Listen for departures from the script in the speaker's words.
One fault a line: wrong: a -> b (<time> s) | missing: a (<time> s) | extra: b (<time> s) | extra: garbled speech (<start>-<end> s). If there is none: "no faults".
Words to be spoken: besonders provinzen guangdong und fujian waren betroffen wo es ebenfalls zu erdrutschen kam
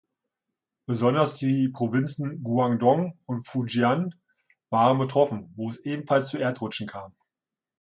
extra: die (1.4 s)